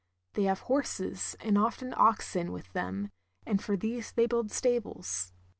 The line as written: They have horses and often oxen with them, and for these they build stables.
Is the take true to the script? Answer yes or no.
yes